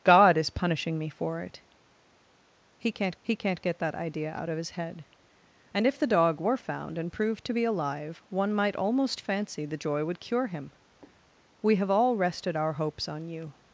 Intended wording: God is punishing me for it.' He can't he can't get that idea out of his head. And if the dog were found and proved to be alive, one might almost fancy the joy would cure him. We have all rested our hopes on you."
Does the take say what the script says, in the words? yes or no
yes